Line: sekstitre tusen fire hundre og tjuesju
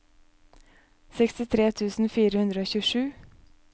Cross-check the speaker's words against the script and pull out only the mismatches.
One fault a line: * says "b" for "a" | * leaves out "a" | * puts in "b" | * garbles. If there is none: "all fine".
all fine